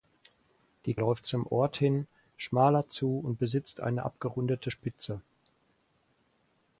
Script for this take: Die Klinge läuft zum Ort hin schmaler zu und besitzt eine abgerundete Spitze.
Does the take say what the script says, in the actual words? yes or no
no